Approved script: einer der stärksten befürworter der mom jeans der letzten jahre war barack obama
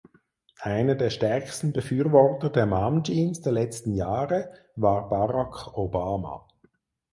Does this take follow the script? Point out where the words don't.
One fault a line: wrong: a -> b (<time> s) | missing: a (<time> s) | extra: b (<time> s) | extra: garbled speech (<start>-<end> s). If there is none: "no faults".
no faults